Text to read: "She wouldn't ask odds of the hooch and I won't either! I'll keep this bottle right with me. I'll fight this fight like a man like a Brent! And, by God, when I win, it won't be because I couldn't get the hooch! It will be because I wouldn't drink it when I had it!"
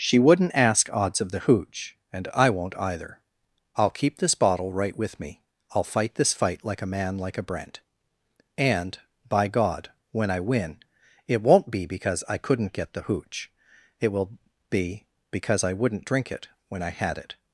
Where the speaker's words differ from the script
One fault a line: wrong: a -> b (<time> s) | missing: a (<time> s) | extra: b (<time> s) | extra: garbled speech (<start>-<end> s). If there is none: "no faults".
no faults